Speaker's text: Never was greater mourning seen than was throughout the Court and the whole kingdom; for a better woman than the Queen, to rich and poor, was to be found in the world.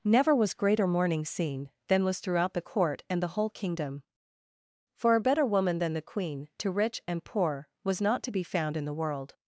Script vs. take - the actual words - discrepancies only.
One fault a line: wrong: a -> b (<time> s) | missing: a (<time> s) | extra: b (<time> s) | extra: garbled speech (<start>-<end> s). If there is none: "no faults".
extra: not (8.0 s)